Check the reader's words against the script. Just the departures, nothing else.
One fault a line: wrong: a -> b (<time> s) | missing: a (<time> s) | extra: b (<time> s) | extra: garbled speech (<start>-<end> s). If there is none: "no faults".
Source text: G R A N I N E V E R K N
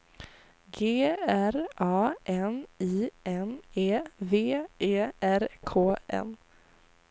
no faults